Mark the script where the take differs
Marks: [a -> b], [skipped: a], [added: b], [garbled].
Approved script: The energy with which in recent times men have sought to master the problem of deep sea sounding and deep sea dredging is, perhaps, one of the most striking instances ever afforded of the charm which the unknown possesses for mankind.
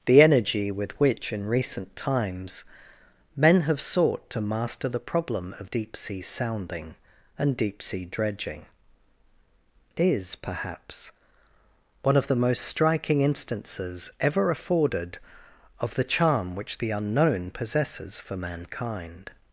The energy with which in recent times men have sought to master the problem of deep sea sounding and deep sea dredging is, perhaps, one of the most striking instances ever afforded of the charm which the unknown possesses for mankind.